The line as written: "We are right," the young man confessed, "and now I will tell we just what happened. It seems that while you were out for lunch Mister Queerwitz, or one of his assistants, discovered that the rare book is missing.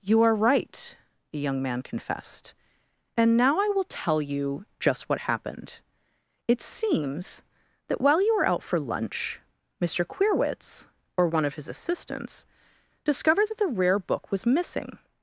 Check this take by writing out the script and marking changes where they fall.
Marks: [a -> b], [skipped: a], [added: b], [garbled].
["We -> You] are right," the young man confessed, "and now I will tell [we -> you] just what happened. It seems that while you were out for lunch Mister Queerwitz, or one of his assistants, discovered that the rare book [is -> was] missing.